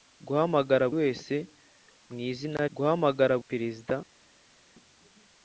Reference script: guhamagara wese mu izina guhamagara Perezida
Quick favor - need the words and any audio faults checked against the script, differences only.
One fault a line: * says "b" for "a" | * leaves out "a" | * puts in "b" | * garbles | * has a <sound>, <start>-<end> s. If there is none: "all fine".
all fine